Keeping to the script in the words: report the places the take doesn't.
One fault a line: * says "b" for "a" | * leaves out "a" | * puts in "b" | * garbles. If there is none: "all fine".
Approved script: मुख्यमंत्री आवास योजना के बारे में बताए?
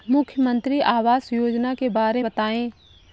* leaves out "में"